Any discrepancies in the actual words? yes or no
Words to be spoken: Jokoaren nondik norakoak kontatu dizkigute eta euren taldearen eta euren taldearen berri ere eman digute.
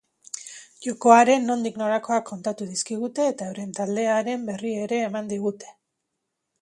yes